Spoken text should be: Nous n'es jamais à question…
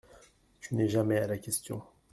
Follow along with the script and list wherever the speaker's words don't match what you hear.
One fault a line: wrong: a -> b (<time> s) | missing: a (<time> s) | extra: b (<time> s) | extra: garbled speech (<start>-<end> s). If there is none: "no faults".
wrong: Nous -> Tu (0.6 s)
extra: la (1.3 s)